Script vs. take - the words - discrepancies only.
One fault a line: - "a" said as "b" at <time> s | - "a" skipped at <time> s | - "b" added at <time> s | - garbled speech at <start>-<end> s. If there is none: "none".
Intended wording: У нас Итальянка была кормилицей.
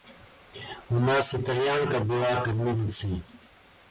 none